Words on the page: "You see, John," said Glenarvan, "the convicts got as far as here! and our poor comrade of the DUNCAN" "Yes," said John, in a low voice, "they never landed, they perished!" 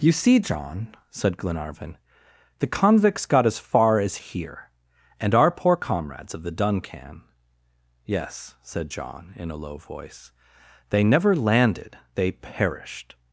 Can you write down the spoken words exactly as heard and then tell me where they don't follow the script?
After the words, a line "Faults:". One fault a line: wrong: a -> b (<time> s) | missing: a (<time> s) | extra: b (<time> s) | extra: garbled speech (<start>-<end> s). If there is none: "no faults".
"You see, John," said Glenarvan, "the convicts got as far as here! and our poor comrades of the DUNCAN" "Yes," said John, in a low voice, "they never landed, they perished!"
Faults:
wrong: comrade -> comrades (5.8 s)